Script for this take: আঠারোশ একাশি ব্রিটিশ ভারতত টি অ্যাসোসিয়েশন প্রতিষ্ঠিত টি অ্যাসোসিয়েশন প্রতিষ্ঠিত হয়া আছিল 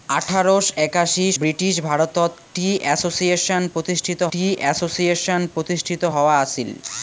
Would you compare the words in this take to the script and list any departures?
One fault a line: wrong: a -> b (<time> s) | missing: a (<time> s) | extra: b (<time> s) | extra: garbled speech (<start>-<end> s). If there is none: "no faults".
no faults